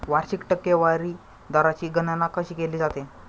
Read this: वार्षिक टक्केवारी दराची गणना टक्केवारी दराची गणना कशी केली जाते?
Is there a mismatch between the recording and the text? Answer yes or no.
yes